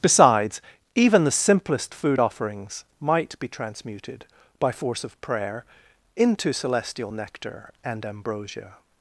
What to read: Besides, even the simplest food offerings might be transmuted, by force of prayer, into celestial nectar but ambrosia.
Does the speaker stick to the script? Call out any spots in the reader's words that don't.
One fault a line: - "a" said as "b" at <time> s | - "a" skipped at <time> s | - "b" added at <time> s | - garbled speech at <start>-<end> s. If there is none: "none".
- "but" said as "and" at 7.8 s